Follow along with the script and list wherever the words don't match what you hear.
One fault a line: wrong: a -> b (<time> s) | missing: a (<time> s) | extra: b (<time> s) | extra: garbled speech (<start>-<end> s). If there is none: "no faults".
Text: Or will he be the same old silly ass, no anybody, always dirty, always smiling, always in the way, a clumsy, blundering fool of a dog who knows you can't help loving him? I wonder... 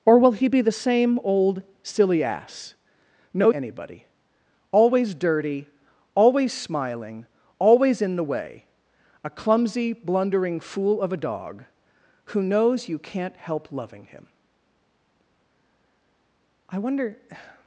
no faults